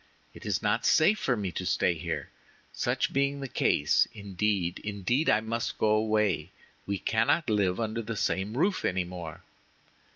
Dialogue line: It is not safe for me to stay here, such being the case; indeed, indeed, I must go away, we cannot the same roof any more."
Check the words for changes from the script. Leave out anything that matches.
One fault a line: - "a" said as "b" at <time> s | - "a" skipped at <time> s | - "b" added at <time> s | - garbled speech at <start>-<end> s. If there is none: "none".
- "live under" added at 7.5 s